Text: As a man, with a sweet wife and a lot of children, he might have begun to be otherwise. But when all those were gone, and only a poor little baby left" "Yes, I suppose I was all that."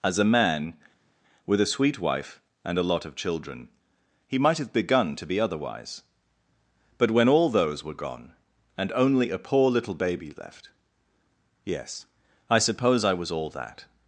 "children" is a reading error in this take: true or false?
false